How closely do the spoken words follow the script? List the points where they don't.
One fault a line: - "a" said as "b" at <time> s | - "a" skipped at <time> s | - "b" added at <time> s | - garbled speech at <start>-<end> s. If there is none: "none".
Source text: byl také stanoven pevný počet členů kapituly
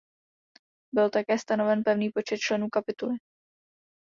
none